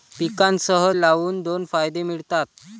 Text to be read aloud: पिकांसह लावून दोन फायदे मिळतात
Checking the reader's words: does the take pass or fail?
pass